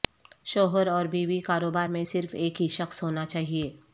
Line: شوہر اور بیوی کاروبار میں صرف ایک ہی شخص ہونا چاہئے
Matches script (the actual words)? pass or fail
pass